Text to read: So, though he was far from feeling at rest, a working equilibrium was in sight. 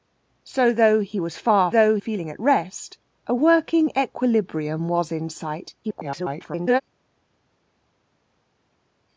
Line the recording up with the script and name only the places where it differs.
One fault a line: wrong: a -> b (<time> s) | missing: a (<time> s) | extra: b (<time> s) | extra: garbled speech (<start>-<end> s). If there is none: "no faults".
wrong: from -> though (1.7 s)
extra: garbled speech (5.8-6.8 s)